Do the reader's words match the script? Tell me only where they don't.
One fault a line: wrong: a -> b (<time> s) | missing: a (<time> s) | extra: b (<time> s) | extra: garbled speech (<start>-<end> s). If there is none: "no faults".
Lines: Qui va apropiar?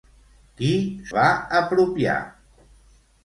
no faults